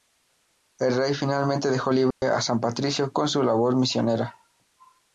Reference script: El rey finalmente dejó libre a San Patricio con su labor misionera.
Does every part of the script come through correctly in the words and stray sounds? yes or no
no